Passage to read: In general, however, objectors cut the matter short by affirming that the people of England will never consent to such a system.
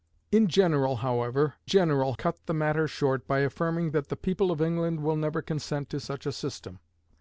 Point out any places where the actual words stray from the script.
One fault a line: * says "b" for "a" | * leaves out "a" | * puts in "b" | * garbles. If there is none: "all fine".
* says "general" for "objectors"